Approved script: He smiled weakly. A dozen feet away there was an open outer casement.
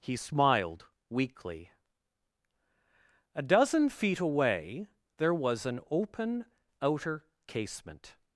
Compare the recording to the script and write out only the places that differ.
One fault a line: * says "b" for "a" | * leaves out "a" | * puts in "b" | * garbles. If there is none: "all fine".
all fine